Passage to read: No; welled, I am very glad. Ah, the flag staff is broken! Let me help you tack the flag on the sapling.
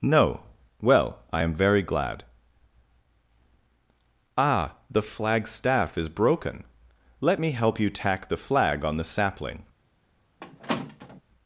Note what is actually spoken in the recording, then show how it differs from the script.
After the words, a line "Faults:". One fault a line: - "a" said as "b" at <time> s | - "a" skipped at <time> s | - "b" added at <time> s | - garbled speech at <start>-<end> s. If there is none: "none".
No; well, I am very glad. Ah, the flag staff is broken! Let me help you tack the flag on the sapling.
Faults:
- "welled" said as "well" at 0.8 s